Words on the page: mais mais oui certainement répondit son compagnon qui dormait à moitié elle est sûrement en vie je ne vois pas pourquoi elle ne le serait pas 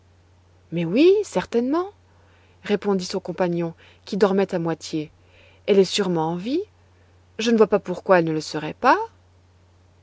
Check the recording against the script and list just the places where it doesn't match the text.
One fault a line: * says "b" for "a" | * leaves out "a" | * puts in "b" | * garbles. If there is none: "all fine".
* leaves out "mais"